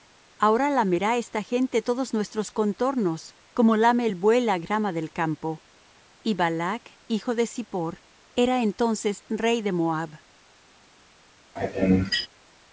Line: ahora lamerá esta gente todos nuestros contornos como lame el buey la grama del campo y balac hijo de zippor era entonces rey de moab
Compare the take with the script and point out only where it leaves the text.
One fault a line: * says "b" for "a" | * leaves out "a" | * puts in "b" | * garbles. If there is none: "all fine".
all fine